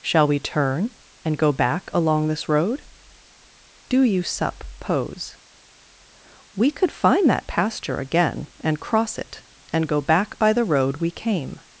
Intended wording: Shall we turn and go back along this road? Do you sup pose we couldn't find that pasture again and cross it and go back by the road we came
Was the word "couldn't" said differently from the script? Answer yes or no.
yes